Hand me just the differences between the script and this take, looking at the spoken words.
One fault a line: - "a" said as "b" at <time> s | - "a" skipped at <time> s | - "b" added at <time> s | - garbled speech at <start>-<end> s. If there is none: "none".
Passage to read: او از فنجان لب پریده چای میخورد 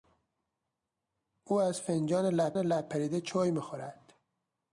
- "لب" added at 2.6 s